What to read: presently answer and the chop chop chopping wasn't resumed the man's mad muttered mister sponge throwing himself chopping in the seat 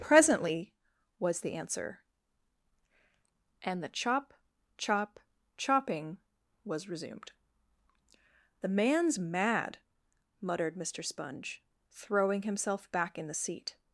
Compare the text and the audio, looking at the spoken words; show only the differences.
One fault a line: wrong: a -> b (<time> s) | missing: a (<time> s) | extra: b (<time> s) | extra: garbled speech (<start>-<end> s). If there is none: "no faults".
extra: was the (1.2 s)
wrong: wasn't -> was (6.7 s)
wrong: chopping -> back (12.9 s)